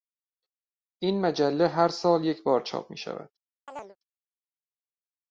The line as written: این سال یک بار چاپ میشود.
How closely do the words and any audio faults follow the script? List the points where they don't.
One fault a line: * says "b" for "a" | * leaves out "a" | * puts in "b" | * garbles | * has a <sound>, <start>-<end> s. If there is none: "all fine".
* puts in "مجله هر"
* has a chirp, 3.7-4.0 s